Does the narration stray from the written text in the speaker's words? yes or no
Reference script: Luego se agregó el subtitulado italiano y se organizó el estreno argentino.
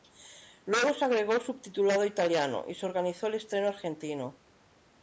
no